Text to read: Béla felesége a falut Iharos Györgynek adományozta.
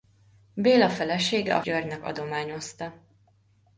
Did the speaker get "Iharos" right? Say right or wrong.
wrong